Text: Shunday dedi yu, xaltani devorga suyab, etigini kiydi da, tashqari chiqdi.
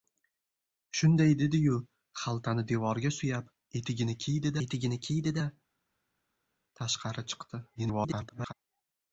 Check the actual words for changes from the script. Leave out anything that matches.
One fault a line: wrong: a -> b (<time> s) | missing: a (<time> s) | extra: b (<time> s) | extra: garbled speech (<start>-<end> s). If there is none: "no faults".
extra: etigini kiydi (4.7 s)
extra: garbled speech (7.7-8.5 s)